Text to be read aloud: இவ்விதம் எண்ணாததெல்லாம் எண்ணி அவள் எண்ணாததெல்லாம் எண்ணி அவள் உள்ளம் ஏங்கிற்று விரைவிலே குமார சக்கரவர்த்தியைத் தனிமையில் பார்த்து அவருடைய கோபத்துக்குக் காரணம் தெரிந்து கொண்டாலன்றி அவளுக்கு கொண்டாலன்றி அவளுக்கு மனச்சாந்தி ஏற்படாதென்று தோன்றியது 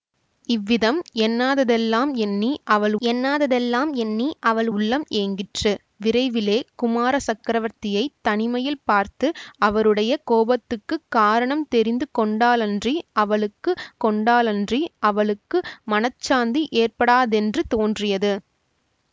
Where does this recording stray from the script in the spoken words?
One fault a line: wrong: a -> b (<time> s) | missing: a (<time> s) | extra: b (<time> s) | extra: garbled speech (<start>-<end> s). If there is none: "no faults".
no faults